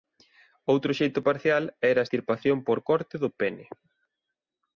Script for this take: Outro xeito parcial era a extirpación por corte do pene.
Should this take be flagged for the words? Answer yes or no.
no